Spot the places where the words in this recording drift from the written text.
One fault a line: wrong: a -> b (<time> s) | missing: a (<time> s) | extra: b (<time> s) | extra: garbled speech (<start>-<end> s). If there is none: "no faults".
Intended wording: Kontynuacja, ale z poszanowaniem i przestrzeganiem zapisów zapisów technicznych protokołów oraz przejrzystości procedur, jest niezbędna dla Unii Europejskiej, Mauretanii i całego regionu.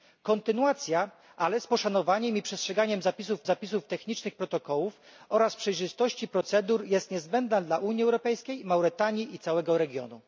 no faults